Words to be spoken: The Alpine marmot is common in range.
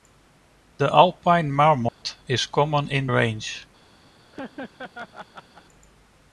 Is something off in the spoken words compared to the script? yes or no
no